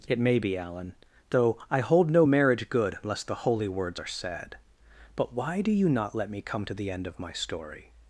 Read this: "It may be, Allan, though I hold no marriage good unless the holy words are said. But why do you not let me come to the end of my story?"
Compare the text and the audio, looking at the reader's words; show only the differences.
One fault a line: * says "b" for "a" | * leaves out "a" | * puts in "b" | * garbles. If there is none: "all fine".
all fine